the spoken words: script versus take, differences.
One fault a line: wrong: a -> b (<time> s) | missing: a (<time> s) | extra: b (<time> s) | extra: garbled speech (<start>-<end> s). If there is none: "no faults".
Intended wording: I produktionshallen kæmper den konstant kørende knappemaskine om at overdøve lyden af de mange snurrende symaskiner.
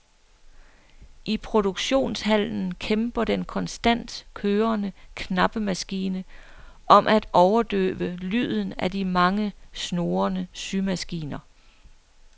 no faults